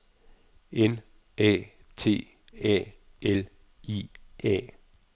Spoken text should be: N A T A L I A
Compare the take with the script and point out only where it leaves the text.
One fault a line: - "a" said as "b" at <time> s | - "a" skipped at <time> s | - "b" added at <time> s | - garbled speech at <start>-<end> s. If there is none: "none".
none